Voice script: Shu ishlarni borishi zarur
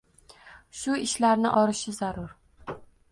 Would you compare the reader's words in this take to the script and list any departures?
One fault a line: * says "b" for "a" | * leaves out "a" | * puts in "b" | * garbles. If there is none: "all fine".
all fine